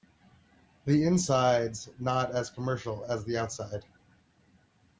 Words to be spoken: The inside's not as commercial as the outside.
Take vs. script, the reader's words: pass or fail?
pass